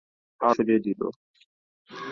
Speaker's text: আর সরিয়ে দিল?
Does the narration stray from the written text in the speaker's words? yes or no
no